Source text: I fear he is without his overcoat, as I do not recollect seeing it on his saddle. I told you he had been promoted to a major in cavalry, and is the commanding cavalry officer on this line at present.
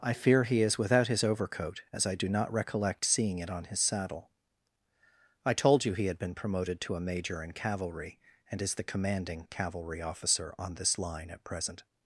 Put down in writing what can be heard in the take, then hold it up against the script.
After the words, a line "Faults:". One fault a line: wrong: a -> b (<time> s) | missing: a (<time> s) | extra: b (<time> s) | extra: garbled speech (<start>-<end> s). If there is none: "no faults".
I fear he is without his overcoat, as I do not recollect seeing it on his saddle. I told you he had been promoted to a major in cavalry, and is the commanding cavalry officer on this line at present.
Faults:
no faults